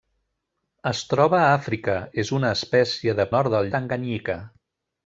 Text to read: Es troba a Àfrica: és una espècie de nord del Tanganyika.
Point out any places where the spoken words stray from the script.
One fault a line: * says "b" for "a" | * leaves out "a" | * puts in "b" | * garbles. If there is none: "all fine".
all fine